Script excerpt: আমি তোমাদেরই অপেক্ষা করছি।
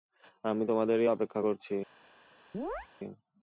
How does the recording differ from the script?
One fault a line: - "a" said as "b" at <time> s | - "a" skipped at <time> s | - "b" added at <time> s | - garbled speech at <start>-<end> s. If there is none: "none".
none